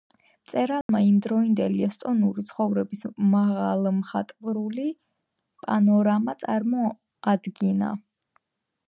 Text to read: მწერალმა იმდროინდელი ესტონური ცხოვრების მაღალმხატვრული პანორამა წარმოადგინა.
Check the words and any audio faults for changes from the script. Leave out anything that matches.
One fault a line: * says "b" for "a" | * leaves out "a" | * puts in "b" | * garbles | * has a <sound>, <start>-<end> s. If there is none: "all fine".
* has a dropout, 0.8-0.9 s